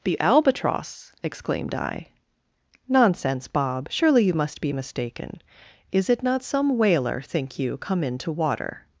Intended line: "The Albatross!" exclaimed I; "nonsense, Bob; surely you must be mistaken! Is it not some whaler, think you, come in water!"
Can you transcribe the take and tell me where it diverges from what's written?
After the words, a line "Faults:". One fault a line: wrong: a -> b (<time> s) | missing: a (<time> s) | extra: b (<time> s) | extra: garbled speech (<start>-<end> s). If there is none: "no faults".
"The Albatross!" exclaimed I; "nonsense, Bob; surely you must be mistaken! Is it not some whaler, think you, come in to water!"
Faults:
extra: to (8.2 s)